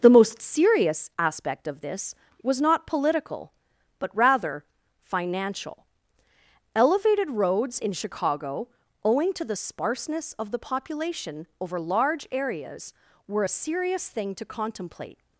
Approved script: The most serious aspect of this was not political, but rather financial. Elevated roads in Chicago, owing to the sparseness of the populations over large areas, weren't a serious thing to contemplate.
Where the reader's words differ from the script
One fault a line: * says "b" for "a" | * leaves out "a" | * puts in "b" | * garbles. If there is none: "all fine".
* says "population" for "populations"
* says "were" for "weren't"